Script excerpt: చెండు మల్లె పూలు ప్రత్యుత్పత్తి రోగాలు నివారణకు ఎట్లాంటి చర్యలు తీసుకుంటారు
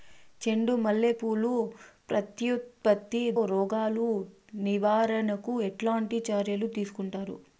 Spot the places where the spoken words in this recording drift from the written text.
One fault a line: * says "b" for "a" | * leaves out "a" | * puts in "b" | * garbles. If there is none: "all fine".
all fine